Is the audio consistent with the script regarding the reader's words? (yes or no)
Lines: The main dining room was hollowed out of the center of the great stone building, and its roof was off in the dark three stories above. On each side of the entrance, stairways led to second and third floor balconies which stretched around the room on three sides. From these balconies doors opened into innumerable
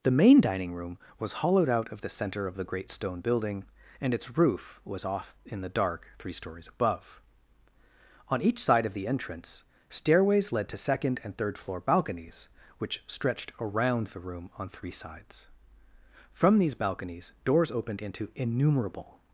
yes